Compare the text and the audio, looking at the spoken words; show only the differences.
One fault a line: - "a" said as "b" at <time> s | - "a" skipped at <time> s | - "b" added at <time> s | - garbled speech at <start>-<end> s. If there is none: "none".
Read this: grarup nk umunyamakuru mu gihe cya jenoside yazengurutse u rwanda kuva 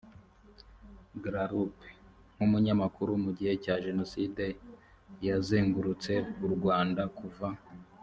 none